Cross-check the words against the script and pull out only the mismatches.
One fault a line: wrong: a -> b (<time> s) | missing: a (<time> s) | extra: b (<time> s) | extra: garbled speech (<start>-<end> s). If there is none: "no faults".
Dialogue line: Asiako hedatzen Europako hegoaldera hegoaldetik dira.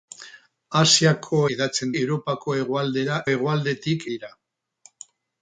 no faults